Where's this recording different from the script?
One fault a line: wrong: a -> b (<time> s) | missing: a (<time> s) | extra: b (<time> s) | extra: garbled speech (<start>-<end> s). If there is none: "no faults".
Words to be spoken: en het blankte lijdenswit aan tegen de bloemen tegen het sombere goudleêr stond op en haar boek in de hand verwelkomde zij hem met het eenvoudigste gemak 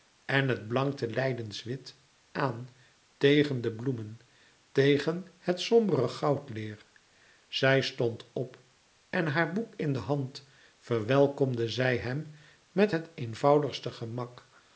extra: zij (7.5 s)